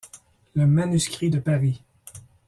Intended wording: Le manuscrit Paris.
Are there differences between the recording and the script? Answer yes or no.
yes